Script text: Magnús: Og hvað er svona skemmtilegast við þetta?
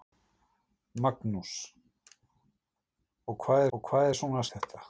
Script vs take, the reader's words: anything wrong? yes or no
yes